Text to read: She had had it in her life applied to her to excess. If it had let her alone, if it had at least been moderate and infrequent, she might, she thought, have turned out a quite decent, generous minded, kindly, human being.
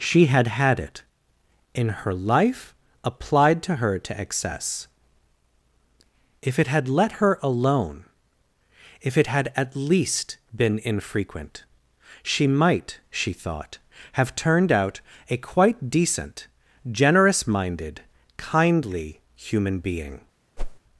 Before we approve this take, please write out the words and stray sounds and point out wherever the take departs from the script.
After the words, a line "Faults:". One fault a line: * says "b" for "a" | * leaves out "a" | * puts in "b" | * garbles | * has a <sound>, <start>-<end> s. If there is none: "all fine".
She had had it in her life applied to her to excess. If it had let her alone, if it had at least been infrequent, she might, she thought, have turned out a quite decent, generous minded, kindly, human being.
Faults:
* leaves out "moderate and"
* has a whoosh, 20.6-20.8 s